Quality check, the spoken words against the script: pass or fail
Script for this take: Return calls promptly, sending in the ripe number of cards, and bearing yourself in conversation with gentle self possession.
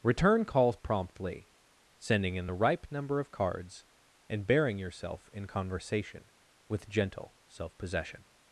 pass